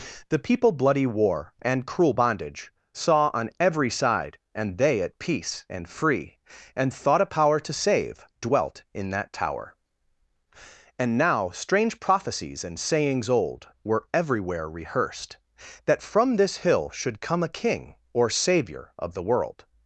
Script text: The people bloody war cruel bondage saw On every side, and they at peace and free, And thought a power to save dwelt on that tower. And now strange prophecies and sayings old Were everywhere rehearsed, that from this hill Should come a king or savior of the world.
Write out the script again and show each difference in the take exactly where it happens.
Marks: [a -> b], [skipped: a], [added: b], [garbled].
The people bloody war [added: and] cruel bondage saw On every side, and they at peace and free, And thought a power to save dwelt [on -> in] that tower. And now strange prophecies and sayings old Were everywhere rehearsed, that from this hill Should come a king or savior of the world.